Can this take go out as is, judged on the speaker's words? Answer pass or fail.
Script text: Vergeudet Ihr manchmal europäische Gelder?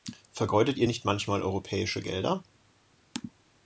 fail